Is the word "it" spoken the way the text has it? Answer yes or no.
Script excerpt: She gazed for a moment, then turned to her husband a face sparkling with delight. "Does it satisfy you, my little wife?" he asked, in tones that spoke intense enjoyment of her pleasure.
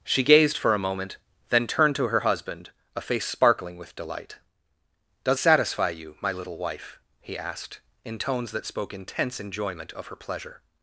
no